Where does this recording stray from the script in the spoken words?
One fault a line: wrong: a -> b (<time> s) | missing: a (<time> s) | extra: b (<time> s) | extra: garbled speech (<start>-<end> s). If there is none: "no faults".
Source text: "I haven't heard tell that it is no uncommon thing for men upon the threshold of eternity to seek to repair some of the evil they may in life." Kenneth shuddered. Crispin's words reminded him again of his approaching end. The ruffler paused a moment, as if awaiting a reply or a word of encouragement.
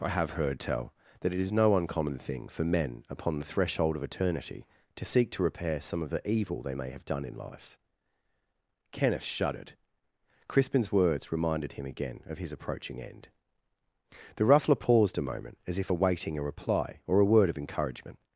wrong: haven't -> have (0.1 s)
extra: have done (6.9 s)